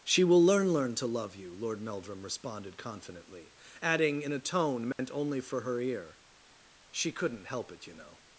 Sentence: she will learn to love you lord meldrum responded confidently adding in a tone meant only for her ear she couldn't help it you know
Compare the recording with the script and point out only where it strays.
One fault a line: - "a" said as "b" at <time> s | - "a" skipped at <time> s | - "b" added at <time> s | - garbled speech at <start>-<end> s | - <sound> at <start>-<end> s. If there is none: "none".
- "learn" added at 0.7 s
- dropout at 4.9-5.0 s